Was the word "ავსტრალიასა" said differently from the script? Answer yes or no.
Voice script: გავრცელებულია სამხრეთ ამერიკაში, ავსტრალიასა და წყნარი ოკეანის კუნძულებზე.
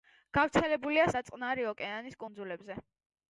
yes